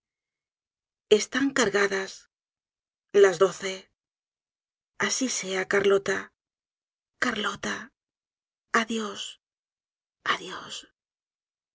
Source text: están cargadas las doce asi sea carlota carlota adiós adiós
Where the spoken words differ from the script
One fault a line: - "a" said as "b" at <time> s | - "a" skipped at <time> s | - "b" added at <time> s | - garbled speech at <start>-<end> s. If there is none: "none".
none